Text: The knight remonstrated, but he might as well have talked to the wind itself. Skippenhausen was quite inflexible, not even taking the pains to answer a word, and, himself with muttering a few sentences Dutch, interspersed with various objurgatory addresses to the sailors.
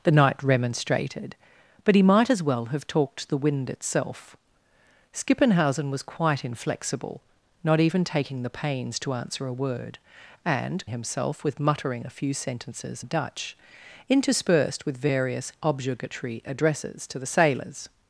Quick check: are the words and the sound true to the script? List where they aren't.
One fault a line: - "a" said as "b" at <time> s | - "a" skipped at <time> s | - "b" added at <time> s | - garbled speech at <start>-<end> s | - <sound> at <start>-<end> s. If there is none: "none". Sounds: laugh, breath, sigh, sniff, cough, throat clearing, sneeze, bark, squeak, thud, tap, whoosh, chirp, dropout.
none